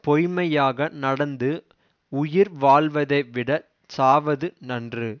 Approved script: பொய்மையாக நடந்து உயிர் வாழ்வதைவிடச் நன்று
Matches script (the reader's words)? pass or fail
fail